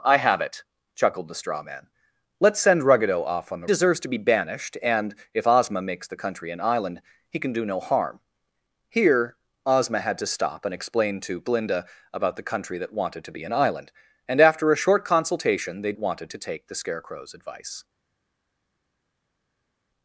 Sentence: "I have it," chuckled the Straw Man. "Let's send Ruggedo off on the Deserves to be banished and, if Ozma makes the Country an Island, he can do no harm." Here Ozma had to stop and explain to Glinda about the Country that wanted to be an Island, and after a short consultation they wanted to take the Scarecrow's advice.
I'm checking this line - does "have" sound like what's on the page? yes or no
yes